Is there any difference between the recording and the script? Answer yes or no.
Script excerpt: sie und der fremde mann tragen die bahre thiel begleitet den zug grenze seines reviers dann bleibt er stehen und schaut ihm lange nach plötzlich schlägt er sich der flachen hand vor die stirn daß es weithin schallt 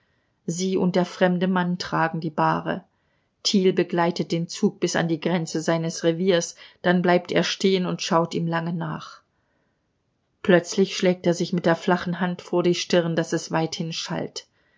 yes